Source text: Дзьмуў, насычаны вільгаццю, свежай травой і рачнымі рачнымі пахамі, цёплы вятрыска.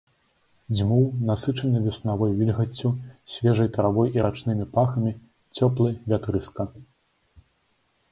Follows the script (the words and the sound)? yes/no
no